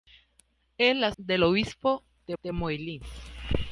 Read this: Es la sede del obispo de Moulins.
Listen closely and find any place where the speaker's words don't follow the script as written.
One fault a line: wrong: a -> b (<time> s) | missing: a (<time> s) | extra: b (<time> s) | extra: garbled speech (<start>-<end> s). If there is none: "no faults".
missing: sede (1.1 s)
extra: de (2.4 s)